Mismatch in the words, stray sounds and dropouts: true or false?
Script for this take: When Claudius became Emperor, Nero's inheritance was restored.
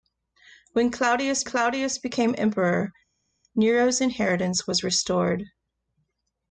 true